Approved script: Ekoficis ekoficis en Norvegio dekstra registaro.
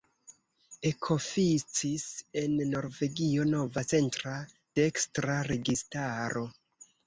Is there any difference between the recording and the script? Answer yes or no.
yes